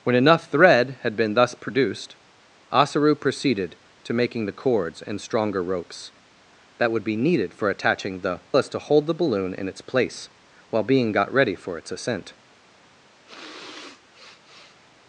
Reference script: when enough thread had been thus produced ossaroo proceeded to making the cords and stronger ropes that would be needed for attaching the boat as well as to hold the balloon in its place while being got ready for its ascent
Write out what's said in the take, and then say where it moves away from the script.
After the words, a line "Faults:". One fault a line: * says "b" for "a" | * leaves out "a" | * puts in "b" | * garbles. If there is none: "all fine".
when enough thread had been thus produced ossaroo proceeded to making the cords and stronger ropes that would be needed for attaching the as to hold the balloon in its place while being got ready for its ascent
Faults:
* leaves out "boat as well"